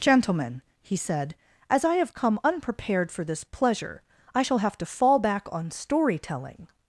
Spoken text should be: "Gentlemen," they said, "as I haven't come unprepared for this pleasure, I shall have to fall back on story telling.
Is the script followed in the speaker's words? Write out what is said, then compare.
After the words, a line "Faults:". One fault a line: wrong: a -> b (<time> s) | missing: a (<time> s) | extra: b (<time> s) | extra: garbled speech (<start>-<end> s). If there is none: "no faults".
"Gentlemen," he said, "as I have come unprepared for this pleasure, I shall have to fall back on story telling.
Faults:
wrong: they -> he (0.8 s)
wrong: haven't -> have (1.9 s)